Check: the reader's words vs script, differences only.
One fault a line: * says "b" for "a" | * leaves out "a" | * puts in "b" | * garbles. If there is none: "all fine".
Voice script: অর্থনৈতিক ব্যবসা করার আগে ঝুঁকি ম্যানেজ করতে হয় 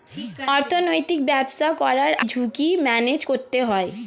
* leaves out "আগে"